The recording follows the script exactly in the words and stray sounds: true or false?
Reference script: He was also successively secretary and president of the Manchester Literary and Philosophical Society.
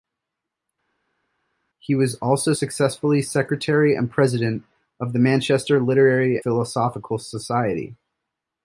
false